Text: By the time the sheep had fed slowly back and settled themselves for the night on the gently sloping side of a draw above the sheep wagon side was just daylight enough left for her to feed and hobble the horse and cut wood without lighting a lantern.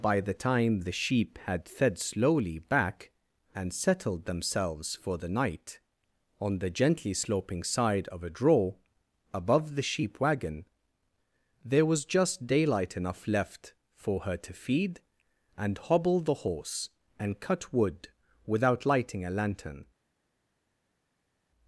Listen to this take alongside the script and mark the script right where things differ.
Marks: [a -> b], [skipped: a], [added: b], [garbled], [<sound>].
By the time the sheep had fed slowly back and settled themselves for the night on the gently sloping side of a draw above the sheep wagon [side -> there] was just daylight enough left for her to feed and hobble the horse and cut wood without lighting a lantern.